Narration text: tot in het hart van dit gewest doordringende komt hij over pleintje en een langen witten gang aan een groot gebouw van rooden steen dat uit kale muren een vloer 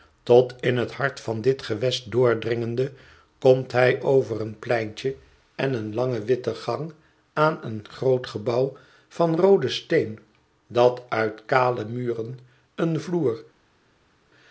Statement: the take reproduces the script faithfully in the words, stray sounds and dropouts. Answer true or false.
false